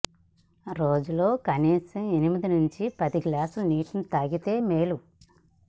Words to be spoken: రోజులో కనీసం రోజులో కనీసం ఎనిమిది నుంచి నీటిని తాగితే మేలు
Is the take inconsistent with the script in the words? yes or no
yes